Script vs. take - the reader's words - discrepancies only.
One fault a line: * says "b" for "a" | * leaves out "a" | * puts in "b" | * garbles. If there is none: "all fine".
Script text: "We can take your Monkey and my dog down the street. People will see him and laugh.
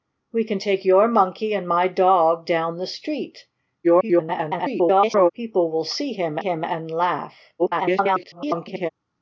* garbles
* puts in "him"
* garbles